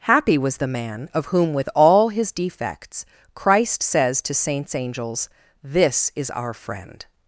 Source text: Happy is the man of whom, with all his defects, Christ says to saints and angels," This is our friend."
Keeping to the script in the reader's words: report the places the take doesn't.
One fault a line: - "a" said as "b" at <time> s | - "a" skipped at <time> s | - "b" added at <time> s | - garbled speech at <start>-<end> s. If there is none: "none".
- "is" said as "was" at 0.4 s
- "and" skipped at 4.7 s